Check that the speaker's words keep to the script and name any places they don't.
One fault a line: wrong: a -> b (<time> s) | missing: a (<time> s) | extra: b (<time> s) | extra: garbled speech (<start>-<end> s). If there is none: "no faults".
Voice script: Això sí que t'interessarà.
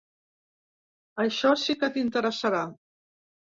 no faults